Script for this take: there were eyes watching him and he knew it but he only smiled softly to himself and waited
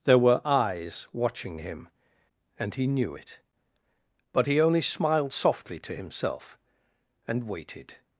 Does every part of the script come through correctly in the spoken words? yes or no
yes